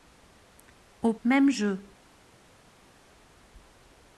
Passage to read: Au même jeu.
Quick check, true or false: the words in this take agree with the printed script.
true